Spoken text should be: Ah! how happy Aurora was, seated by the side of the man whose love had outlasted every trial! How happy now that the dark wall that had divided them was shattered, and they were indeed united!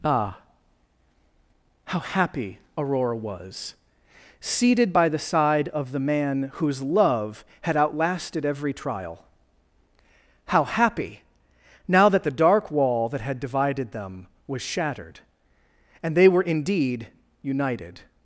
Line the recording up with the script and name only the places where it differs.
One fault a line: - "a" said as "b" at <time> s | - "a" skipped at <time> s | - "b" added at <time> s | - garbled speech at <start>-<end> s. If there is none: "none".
none